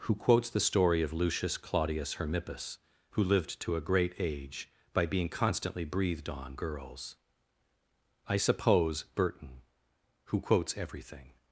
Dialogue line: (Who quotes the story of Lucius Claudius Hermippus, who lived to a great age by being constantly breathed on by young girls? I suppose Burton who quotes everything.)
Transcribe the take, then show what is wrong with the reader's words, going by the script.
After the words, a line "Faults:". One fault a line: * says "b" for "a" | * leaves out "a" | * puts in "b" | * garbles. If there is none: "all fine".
(Who quotes the story of Lucius Claudius Hermippus, who lived to a great age by being constantly breathed on girls? I suppose Burton who quotes everything.)
Faults:
* leaves out "by young"